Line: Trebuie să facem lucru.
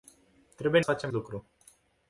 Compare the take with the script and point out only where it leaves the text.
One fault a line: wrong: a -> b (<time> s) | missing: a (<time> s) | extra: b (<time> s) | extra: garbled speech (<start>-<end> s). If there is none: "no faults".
no faults